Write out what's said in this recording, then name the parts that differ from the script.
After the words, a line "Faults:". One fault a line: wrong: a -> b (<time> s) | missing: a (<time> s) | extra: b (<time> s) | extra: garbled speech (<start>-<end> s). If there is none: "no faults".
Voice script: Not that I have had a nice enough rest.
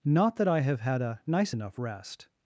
Not that I have had a nice enough rest.
Faults:
no faults